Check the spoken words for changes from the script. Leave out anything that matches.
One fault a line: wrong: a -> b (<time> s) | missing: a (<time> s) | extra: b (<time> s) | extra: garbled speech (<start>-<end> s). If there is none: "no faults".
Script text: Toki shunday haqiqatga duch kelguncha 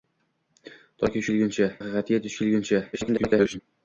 wrong: shunday -> kelguncha (1.3 s)
extra: garbled speech (2.9-3.6 s)